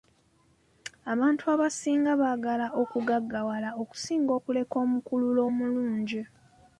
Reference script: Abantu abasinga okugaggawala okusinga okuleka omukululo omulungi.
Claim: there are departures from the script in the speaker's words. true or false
true